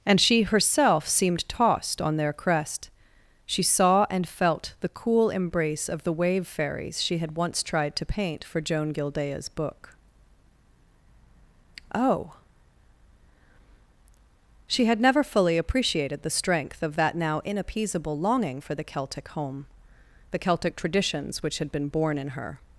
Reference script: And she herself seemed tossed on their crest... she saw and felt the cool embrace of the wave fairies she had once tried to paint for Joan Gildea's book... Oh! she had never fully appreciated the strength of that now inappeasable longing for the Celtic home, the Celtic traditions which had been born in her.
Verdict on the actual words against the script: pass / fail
pass